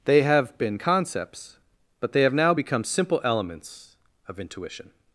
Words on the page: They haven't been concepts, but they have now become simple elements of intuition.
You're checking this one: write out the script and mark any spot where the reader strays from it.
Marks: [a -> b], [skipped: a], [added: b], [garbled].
They [haven't -> have] been concepts, but they have now become simple elements of intuition.